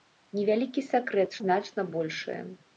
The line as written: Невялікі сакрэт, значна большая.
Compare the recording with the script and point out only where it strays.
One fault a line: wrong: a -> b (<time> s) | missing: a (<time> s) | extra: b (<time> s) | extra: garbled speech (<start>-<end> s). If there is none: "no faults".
no faults